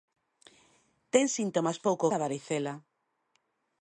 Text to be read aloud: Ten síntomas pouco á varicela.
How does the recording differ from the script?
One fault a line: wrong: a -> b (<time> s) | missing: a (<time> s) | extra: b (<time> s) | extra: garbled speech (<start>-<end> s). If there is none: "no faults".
no faults